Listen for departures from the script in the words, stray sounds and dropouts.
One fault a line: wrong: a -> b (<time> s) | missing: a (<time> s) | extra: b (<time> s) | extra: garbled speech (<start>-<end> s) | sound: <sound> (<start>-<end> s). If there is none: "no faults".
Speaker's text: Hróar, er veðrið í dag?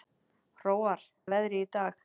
no faults